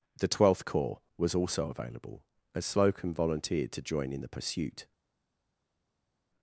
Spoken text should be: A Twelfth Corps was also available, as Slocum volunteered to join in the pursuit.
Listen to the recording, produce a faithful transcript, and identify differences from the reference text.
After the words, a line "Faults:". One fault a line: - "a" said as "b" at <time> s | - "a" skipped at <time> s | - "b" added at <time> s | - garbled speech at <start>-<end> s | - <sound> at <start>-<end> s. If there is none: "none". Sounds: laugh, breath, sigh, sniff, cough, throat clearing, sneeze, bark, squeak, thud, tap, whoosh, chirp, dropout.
The Twelfth Corps was also available, as Slocum volunteered to join in the pursuit.
Faults:
- "A" said as "The" at 0.2 s